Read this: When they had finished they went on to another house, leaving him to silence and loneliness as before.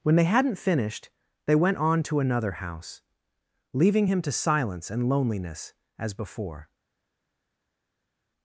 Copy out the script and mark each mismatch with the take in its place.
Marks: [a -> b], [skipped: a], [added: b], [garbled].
When they [had -> hadn't] finished they went on to another house, leaving him to silence and loneliness as before.